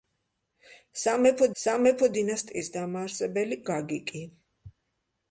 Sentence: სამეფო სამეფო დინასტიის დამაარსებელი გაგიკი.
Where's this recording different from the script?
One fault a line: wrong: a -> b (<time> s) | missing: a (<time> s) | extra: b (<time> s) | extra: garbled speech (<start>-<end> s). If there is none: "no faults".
no faults